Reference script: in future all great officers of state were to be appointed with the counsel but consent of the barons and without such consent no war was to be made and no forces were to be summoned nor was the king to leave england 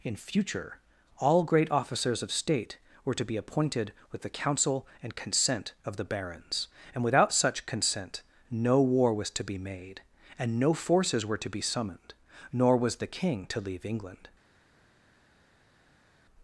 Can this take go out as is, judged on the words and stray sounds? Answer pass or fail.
fail